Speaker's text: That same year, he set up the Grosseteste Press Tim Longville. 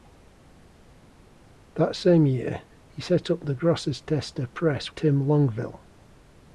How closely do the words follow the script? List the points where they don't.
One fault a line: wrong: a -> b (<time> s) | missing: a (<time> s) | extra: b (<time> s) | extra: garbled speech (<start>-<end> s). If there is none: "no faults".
no faults